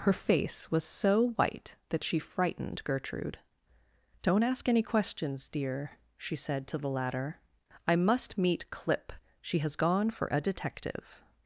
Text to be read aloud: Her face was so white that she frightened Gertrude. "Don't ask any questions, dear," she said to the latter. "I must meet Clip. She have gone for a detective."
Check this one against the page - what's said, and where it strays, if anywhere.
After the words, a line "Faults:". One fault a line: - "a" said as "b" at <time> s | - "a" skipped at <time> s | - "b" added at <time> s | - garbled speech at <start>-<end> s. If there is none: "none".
Her face was so white that she frightened Gertrude. "Don't ask any questions, dear," she said to the latter. "I must meet Clip. She has gone for a detective."
Faults:
- "have" said as "has" at 9.6 s